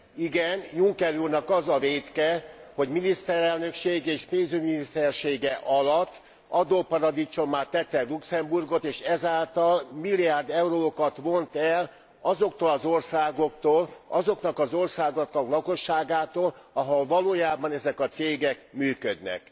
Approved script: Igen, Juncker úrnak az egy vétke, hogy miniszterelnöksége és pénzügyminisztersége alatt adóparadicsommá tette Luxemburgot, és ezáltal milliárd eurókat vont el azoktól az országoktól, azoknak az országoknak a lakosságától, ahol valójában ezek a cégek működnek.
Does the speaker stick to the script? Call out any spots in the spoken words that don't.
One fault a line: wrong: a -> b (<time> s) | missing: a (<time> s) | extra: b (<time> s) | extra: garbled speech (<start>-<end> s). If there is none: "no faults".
wrong: egy -> a (1.7 s)